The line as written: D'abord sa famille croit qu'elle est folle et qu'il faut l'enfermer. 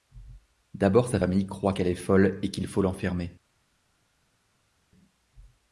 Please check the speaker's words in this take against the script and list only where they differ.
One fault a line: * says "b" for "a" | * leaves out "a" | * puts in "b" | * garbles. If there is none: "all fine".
all fine